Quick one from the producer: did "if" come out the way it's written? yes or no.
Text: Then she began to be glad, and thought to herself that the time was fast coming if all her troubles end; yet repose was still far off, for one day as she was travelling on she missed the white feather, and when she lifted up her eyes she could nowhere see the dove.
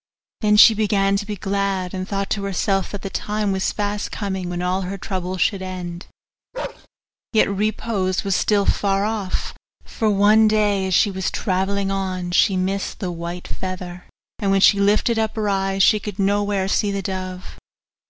no